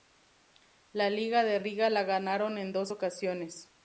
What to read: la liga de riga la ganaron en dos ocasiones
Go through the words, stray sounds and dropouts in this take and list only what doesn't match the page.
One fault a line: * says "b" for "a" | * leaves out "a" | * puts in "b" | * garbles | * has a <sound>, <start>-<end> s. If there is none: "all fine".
all fine